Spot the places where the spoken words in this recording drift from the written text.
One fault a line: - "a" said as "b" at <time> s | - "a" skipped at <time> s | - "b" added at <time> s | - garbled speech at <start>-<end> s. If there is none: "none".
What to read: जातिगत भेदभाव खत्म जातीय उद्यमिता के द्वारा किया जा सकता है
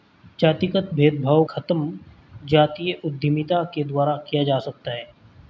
none